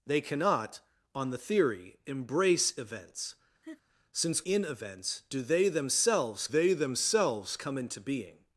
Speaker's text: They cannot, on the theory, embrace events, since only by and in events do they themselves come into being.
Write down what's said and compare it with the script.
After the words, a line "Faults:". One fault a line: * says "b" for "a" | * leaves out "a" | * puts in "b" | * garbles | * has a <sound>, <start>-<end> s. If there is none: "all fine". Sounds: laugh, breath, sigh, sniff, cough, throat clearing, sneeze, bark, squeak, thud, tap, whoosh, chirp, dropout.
They cannot, on the theory, embrace events, since in events do they themselves they themselves come into being.
Faults:
* has a laugh, 3.6-3.8 s
* leaves out "only by and"
* puts in "they themselves"